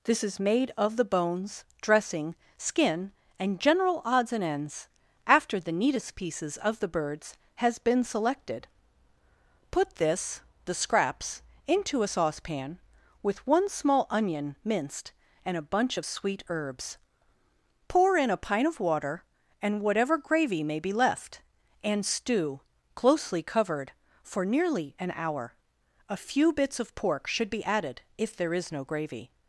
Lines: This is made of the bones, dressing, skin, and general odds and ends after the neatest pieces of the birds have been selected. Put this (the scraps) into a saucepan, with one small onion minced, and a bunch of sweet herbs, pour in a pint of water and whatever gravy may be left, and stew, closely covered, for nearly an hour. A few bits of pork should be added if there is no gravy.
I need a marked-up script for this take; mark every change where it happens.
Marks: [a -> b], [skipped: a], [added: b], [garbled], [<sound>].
This is made of the bones, dressing, skin, and general odds and ends after the neatest pieces of the birds [have -> has] been selected. Put this (the scraps) into a saucepan, with one small onion minced, and a bunch of sweet herbs, pour in a pint of water and whatever gravy may be left, and stew, closely covered, for nearly an hour. A few bits of pork should be added if there is no gravy.